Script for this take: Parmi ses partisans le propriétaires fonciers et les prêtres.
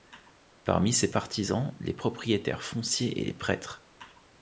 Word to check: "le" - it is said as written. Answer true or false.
false